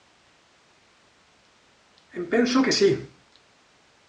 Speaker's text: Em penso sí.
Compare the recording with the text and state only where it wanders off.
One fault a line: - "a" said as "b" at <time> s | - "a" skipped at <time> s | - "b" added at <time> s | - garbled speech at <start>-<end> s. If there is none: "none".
- "que" added at 2.6 s